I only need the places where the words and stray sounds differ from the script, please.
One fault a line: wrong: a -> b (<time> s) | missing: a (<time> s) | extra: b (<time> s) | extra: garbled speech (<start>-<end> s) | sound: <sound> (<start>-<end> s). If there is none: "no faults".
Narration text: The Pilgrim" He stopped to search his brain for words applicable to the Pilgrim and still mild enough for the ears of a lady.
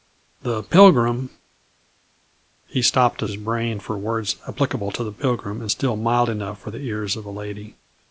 missing: search (3.3 s)